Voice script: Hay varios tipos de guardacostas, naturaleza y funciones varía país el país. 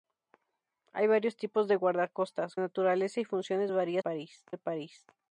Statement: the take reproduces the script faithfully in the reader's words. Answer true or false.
true